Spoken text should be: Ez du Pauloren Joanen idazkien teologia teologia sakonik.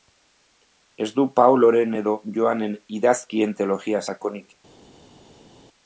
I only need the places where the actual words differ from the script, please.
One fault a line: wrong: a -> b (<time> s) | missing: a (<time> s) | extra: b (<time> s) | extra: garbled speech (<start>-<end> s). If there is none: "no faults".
extra: edo (2.0 s)
missing: teologia (4.1 s)